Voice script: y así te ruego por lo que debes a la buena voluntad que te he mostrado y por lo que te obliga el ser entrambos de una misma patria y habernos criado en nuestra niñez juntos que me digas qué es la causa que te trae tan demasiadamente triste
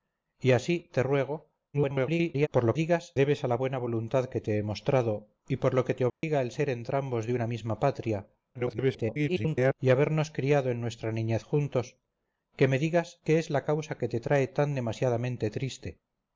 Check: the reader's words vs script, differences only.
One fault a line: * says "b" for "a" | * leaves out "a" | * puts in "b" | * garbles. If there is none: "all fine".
* garbles
* says "digas" for "que"
* garbles